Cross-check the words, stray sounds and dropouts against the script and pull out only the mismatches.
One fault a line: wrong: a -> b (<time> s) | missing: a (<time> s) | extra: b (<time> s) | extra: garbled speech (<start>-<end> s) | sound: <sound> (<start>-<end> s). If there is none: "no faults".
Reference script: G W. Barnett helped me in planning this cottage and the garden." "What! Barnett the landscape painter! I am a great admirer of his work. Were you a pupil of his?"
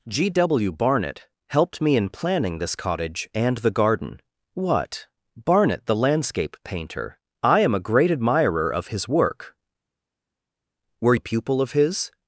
missing: you (11.2 s)